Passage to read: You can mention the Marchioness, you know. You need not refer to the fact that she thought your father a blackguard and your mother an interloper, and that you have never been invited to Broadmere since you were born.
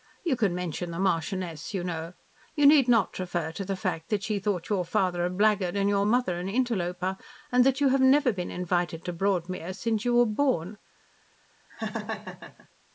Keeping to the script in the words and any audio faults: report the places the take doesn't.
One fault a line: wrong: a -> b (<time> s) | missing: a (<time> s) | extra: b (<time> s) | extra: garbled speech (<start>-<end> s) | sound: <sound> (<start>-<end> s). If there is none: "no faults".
sound: laugh (11.7-12.7 s)